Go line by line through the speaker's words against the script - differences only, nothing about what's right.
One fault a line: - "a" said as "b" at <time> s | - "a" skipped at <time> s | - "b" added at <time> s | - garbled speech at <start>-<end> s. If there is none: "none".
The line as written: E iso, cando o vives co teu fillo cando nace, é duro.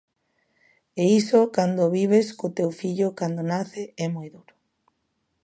- "moi" added at 4.2 s